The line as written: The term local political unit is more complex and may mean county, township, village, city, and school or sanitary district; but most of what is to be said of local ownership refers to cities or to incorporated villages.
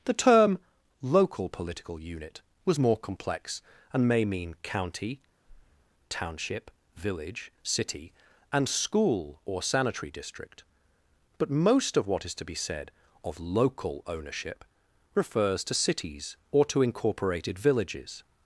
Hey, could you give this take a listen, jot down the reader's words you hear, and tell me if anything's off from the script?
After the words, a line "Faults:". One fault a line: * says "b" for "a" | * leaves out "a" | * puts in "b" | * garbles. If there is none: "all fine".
The term local political unit was more complex and may mean county, township, village, city, and school or sanitary district; but most of what is to be said of local ownership refers to cities or to incorporated villages.
Faults:
* says "was" for "is"